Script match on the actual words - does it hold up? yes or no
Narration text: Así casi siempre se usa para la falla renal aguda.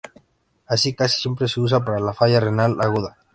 yes